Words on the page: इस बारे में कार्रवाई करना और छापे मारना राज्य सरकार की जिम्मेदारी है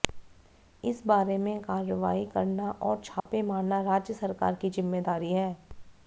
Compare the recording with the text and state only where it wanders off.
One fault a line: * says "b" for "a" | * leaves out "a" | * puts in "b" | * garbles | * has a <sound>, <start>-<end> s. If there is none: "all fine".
* has a dropout, 3.2-3.3 s